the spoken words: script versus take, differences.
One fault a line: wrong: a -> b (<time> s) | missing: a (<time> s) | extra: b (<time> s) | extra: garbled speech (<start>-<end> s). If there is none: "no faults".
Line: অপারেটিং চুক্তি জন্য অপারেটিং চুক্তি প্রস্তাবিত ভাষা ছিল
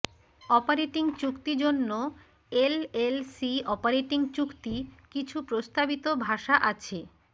extra: এলএলসি (2.6 s)
extra: কিছু (5.1 s)
wrong: ছিল -> আছে (6.7 s)